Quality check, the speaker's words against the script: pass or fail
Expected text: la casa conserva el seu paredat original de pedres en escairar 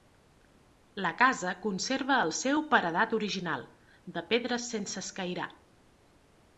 fail